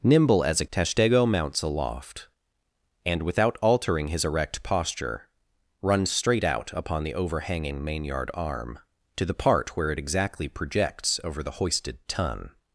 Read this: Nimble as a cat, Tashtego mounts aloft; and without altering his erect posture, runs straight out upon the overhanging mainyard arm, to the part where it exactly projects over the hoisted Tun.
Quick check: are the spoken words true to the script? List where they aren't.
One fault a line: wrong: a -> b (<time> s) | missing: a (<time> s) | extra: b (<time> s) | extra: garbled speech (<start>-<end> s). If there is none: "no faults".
missing: cat (0.7 s)